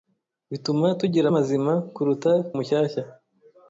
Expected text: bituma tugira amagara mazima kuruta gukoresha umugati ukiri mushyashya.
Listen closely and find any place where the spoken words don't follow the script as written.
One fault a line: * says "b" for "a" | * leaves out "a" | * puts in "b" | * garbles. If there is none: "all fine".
* leaves out "amagara"
* leaves out "gukoresha umugati ukiri"